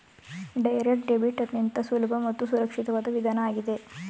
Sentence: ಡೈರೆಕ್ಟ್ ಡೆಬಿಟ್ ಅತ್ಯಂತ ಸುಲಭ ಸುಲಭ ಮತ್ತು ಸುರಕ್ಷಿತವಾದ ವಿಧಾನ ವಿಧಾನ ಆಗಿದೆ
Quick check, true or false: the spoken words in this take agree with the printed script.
false